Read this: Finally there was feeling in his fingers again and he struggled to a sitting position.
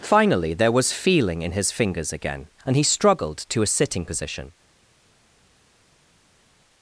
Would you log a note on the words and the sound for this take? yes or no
no